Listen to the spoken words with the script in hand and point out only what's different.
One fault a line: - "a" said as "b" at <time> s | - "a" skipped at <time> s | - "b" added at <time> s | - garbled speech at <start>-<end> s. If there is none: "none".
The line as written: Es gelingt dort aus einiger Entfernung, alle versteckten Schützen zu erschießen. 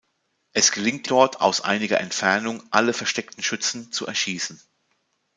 none